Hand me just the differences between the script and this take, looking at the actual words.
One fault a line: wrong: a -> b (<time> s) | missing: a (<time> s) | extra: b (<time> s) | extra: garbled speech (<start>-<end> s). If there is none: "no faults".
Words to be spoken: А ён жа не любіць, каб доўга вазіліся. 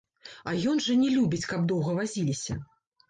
no faults